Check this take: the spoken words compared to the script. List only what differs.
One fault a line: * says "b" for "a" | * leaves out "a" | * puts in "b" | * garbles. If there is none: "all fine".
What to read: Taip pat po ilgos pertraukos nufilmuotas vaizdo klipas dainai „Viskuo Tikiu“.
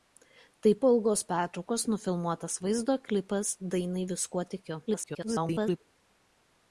* leaves out "pat"
* garbles